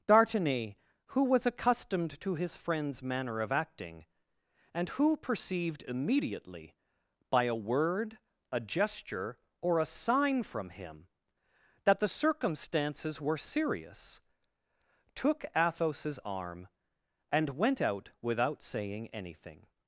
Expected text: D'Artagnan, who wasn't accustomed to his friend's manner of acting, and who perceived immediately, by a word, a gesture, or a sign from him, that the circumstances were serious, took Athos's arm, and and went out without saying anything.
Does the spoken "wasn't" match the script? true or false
false